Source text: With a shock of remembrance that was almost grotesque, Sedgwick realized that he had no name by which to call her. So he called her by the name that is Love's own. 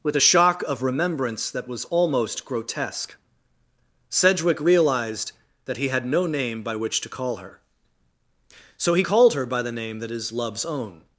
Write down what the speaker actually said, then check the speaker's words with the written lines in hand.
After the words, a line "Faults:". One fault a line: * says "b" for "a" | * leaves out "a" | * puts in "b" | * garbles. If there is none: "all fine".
With a shock of remembrance that was almost grotesque, Sedgwick realized that he had no name by which to call her. So he called her by the name that is Love's own.
Faults:
all fine